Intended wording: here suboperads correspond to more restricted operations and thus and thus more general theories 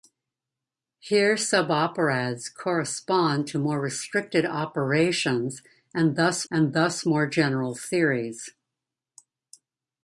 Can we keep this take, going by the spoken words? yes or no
yes